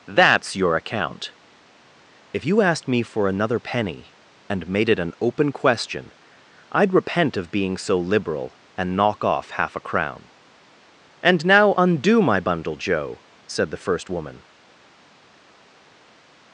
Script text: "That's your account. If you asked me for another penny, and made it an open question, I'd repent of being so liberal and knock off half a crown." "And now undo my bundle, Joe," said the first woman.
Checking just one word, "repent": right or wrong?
right